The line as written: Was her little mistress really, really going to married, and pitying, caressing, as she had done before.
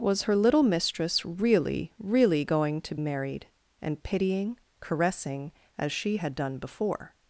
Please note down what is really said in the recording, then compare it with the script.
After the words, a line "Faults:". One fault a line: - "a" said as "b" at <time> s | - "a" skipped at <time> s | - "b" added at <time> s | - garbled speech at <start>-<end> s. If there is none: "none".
Was her little mistress really, really going to married, and pitying, caressing, as she had done before.
Faults:
none